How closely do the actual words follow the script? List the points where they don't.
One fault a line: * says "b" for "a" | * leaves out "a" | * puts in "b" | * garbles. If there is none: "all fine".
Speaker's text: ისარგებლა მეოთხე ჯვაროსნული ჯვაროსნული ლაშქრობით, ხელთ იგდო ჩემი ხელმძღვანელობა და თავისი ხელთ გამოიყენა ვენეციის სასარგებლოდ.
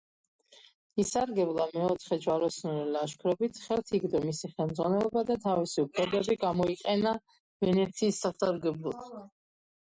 * leaves out "ჯვაროსნული"
* says "მისი" for "ჩემი"
* says "უფლებები" for "ხელთ"